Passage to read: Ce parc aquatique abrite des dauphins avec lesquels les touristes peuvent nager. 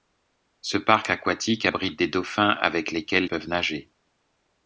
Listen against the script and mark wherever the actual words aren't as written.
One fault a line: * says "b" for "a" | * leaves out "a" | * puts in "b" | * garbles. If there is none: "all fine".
* leaves out "les touristes"